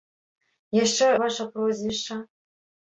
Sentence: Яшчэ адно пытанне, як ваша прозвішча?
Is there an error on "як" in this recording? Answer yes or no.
yes